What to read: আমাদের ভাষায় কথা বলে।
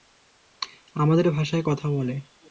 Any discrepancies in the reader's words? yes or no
no